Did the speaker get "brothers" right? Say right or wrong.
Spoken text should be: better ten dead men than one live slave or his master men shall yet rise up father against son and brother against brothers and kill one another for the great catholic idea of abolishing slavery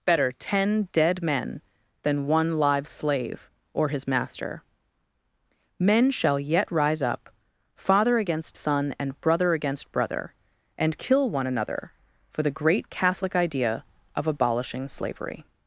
wrong